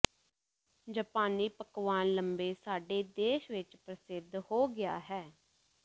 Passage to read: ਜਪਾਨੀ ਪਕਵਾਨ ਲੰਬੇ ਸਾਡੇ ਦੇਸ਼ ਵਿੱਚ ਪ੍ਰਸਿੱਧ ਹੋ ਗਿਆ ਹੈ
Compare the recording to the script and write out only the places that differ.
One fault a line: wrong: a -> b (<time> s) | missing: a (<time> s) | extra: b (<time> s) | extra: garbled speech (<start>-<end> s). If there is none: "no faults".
no faults